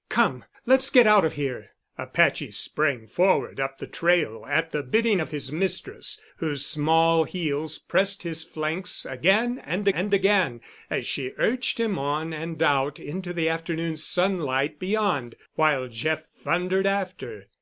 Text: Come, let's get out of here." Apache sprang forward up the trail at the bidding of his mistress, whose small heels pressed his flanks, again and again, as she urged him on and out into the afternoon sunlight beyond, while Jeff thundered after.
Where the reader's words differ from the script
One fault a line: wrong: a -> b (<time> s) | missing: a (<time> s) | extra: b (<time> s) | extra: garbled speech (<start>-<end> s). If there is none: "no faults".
extra: and (9.9 s)